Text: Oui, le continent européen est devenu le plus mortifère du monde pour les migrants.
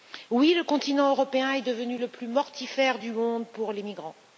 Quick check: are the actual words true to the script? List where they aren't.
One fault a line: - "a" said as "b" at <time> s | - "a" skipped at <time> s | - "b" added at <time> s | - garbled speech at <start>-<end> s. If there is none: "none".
none